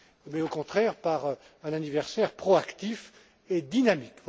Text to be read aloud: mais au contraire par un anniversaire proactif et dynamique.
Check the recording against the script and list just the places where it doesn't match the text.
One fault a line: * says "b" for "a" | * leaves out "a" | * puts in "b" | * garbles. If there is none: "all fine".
all fine